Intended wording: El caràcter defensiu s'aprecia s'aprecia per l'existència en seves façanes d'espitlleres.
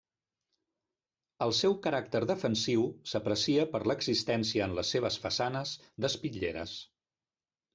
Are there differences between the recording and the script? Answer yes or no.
yes